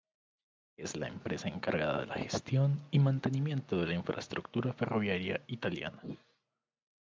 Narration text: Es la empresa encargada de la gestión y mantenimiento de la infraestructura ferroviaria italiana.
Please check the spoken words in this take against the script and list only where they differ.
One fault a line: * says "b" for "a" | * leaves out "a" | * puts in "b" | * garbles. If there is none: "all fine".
all fine